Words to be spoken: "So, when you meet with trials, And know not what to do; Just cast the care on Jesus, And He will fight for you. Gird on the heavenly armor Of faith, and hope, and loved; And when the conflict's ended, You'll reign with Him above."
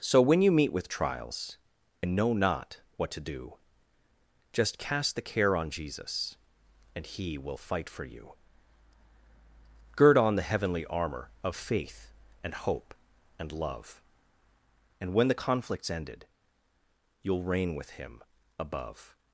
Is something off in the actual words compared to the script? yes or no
yes